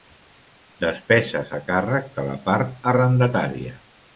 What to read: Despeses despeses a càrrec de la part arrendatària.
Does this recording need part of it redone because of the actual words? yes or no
yes